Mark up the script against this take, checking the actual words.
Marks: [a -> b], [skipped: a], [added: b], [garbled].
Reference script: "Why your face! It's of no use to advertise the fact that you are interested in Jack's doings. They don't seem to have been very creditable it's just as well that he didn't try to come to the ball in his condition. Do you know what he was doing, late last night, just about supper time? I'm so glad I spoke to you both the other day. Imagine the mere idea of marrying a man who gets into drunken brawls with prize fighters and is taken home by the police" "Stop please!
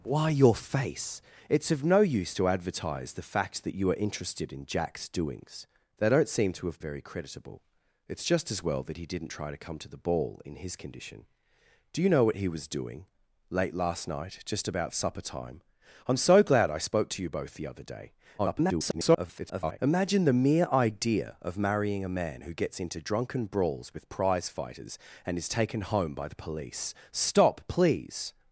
"Why your face! It's of no use to advertise the fact that you are interested in Jack's doings. They don't seem to have [skipped: been] very creditable it's just as well that he didn't try to come to the ball in his condition. Do you know what he was doing, late last night, just about supper time? I'm so glad I spoke to you both the other day. [garbled] Imagine the mere idea of marrying a man who gets into drunken brawls with prize fighters and is taken home by the police" "Stop please!